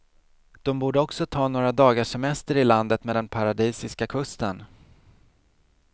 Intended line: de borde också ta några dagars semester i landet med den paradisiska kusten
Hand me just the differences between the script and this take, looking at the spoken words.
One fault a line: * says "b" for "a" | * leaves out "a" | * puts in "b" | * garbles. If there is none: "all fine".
all fine